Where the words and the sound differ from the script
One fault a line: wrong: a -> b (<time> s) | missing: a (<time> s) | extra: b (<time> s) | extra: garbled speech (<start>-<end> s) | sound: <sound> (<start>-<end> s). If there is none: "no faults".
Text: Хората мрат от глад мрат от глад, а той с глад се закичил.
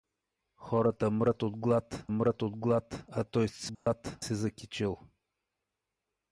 sound: dropout (3.7-3.9 s)